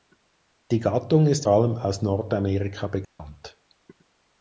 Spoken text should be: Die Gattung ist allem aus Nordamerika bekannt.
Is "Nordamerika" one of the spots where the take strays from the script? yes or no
no